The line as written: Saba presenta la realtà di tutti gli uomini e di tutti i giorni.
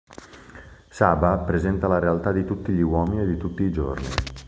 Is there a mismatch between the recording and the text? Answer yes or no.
no